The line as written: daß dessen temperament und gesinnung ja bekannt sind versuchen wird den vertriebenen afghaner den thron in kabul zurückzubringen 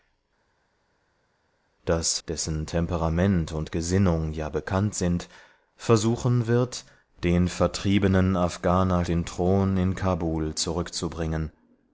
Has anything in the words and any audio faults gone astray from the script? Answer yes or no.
no